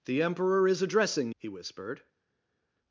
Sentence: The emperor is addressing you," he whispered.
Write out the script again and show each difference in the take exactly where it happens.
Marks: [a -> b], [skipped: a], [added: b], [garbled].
The emperor is addressing [skipped: you,"] he whispered.